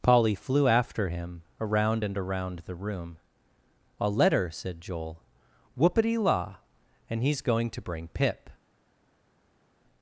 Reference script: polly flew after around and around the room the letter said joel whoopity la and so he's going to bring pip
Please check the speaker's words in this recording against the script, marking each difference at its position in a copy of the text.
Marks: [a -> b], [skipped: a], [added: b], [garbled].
polly flew after [added: him] around and around the room [the -> a] letter said joel whoopity la and [skipped: so] he's going to bring pip